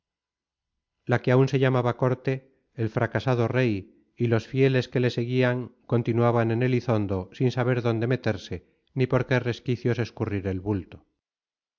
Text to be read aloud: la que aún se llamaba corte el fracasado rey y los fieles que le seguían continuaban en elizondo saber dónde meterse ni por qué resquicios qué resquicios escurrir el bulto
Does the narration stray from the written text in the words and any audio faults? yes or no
yes